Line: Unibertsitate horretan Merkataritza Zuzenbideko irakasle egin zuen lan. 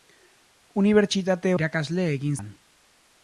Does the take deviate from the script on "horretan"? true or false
true